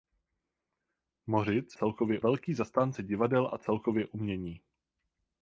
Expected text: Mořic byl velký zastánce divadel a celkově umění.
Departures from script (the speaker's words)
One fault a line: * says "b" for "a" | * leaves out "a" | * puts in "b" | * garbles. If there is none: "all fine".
* says "celkově" for "byl"